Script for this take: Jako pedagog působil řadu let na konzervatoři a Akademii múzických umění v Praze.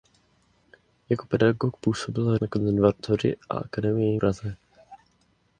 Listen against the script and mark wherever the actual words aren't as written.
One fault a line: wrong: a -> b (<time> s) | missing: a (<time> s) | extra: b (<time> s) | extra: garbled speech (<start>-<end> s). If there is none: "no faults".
missing: řadu let (2.4 s)
missing: múzických umění v (4.2 s)